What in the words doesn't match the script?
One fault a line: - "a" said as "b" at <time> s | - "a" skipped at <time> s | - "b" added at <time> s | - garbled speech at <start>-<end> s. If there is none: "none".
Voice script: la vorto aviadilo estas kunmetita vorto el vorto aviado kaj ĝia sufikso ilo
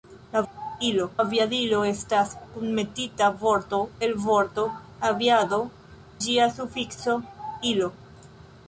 - "vorto" said as "ilo" at 0.5 s
- "kaj" skipped at 5.6 s